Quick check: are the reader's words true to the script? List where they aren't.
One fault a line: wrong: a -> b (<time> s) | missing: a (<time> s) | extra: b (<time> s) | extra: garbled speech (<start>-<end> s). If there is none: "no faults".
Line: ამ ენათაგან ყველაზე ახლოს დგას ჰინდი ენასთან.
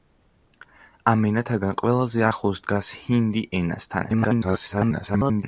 extra: garbled speech (4.0-5.4 s)